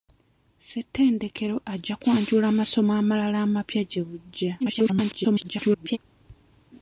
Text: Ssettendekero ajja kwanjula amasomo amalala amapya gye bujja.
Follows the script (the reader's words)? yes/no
no